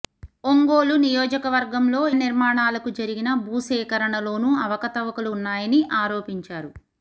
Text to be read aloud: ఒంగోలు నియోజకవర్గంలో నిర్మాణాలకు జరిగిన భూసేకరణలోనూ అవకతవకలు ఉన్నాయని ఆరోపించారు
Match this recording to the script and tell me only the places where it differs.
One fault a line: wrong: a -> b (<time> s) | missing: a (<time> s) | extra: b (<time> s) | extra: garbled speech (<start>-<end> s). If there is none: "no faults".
no faults